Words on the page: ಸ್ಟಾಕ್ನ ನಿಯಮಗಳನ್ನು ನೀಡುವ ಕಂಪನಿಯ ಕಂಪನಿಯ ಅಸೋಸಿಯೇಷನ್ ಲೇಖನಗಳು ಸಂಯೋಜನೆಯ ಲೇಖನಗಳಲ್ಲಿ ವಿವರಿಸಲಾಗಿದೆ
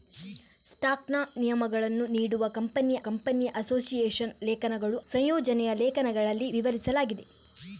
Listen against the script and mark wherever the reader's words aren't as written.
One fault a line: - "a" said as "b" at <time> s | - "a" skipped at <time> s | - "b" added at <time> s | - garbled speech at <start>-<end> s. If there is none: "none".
none